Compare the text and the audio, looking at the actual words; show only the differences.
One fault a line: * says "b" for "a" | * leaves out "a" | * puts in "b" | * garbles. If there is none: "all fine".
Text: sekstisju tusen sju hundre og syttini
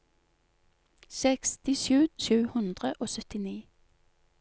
* leaves out "tusen"